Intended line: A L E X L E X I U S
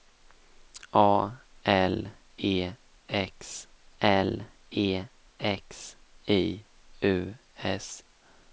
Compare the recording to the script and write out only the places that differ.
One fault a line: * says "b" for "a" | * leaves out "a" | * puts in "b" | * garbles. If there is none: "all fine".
all fine